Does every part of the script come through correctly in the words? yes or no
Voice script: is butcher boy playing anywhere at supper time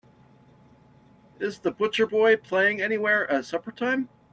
no